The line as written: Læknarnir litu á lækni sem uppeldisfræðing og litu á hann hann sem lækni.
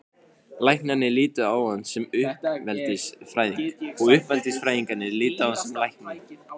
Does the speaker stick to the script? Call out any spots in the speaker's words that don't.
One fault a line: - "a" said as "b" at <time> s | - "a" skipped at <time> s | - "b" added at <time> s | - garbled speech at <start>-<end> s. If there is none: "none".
- "lækni" said as "hann" at 1.7 s
- "uppeldisfræðingarnir" added at 4.2 s
- "hann" skipped at 5.6 s